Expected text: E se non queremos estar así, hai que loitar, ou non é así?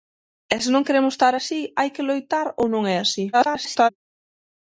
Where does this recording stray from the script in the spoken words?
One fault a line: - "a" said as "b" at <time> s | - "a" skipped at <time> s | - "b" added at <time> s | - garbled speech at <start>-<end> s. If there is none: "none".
- garbled speech at 3.3-3.9 s